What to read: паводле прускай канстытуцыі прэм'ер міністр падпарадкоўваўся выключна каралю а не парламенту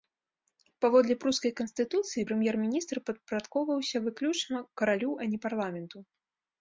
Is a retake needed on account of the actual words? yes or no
no